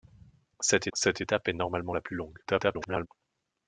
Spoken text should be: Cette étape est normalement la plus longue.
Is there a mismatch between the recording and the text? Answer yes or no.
yes